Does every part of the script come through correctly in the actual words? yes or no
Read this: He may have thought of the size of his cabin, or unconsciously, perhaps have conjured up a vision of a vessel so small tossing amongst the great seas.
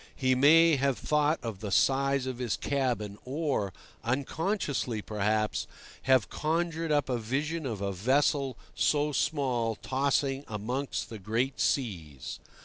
yes